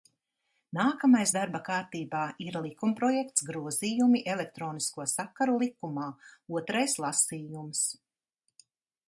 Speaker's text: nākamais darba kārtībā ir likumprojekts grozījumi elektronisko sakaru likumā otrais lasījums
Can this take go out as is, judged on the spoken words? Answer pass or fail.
pass